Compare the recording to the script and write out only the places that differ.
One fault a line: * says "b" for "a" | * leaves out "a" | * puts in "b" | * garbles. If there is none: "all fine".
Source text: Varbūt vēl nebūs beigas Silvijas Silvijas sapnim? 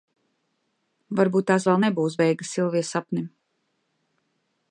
* puts in "tās"
* leaves out "Silvijas"